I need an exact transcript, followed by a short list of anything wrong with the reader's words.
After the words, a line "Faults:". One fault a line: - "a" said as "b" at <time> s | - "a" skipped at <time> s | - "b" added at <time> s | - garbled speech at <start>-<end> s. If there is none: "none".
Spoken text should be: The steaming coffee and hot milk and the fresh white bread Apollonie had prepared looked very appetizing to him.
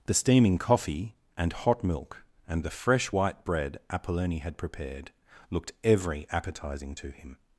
The steaming coffee and hot milk and the fresh white bread Apollonie had prepared looked every appetizing to him.
Faults:
- "very" said as "every" at 5.8 s